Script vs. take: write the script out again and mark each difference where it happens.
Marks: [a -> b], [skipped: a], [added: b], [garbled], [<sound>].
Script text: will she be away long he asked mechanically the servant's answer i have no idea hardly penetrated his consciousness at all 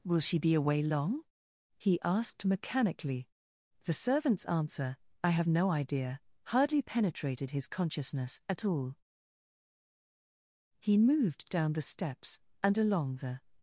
will she be away long he asked mechanically the servant's answer i have no idea hardly penetrated his consciousness at all [added: he moved down the steps and along the]